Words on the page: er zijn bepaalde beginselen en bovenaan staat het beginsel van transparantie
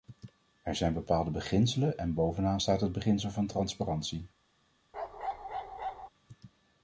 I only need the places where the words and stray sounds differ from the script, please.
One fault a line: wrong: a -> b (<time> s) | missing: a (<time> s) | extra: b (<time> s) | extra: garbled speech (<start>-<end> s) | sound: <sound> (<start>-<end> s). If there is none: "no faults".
sound: bark (4.9-6.1 s)